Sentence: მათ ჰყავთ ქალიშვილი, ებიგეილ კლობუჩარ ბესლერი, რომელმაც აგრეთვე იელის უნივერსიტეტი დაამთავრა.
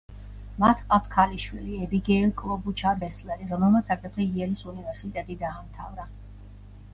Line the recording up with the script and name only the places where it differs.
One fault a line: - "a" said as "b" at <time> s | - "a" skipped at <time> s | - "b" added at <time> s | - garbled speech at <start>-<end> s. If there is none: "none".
none